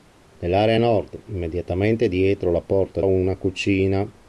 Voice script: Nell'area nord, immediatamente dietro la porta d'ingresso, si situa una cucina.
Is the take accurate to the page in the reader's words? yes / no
no